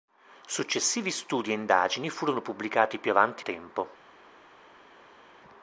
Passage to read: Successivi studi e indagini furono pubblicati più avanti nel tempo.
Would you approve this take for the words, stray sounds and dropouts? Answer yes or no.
no